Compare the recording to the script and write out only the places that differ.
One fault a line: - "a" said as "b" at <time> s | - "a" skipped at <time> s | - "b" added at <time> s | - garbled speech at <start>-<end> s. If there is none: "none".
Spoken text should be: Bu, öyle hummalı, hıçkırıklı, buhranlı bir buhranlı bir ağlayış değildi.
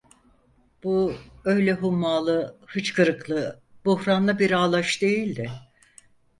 - "buhranlı bir" skipped at 4.5 s